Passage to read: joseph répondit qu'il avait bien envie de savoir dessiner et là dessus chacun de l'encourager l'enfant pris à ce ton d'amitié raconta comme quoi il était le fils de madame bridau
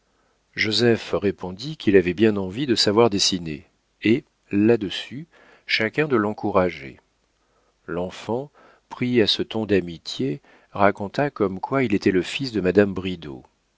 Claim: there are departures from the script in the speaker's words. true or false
false